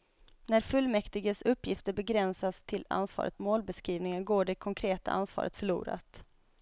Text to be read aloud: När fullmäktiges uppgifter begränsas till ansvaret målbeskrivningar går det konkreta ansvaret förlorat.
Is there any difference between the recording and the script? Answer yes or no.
no